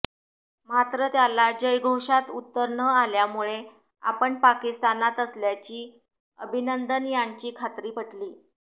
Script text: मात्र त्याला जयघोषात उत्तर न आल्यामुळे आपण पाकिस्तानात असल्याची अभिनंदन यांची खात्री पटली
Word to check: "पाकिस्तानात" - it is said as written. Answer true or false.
true